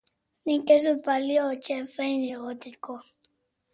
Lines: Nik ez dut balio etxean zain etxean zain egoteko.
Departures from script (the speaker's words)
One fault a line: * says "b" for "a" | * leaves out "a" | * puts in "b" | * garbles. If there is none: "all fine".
* leaves out "etxean zain"